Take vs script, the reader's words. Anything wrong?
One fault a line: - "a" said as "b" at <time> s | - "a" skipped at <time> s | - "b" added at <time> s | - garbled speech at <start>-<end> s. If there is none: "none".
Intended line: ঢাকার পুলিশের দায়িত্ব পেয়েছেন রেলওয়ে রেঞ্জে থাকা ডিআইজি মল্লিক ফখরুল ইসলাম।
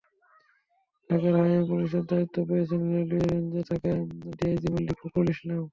- "হাইওয়ে" added at 1.4 s